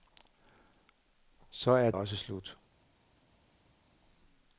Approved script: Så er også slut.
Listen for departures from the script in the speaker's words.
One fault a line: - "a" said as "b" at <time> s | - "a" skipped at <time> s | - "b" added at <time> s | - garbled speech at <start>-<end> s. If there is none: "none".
none